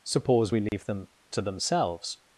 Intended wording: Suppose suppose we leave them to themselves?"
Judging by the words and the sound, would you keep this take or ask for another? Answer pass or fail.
fail